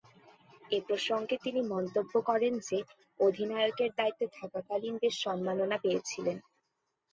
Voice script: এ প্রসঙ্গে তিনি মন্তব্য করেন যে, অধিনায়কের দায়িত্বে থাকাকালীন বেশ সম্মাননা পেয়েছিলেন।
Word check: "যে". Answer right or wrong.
right